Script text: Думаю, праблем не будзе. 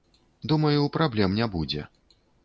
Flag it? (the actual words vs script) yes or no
no